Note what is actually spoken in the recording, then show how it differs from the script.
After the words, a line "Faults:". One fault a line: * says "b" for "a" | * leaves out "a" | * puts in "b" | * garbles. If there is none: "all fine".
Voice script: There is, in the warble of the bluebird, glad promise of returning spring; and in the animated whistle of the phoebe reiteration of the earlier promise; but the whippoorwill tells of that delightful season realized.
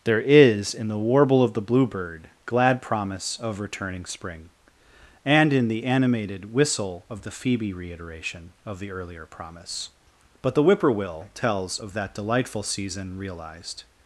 There is, in the warble of the bluebird, glad promise of returning spring; and in the animated whistle of the phoebe reiteration of the earlier promise; but the whippoorwill tells of that delightful season realized.
Faults:
all fine